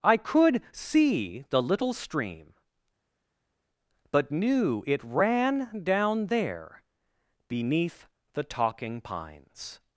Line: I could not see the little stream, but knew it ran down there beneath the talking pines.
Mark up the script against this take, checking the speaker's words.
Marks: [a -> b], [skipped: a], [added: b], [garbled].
I could [skipped: not] see the little stream, but knew it ran down there beneath the talking pines.